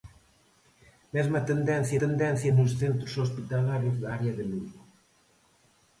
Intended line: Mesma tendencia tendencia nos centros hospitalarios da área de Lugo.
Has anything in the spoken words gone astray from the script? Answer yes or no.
no